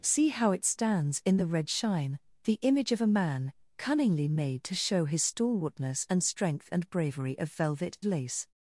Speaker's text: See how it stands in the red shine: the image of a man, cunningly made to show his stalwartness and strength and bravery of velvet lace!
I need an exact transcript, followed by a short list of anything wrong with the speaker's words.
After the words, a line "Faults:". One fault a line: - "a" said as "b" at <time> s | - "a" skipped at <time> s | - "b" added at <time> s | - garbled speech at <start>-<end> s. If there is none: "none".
See how it stands in the red shine: the image of a man, cunningly made to show his stalwartness and strength and bravery of velvet lace!
Faults:
none